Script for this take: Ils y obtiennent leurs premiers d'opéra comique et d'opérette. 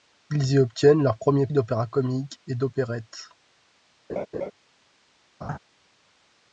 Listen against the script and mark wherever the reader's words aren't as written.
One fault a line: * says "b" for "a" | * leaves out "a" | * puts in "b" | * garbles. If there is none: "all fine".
all fine